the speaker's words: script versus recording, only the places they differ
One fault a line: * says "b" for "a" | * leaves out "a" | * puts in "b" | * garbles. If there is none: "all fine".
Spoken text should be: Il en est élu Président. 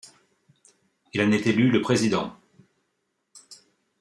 * puts in "le"